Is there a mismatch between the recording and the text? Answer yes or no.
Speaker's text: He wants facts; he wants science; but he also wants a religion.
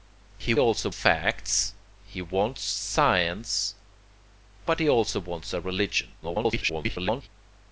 yes